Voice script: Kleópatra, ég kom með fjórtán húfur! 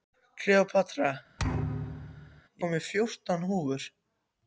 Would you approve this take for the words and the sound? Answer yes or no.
no